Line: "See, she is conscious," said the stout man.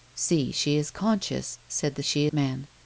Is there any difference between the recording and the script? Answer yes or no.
yes